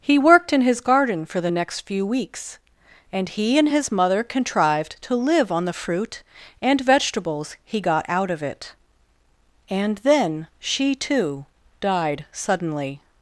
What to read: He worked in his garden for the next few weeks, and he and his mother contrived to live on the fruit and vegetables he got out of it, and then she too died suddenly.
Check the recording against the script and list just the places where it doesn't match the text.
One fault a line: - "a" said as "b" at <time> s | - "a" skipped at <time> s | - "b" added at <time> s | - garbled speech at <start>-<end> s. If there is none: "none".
none